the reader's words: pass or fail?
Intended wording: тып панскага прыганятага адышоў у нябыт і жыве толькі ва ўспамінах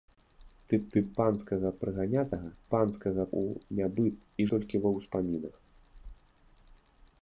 fail